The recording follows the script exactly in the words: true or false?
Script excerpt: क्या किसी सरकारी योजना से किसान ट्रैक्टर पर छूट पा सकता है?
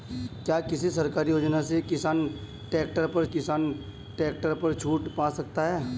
false